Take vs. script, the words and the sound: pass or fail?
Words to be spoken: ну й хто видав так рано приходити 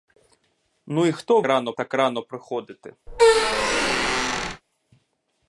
fail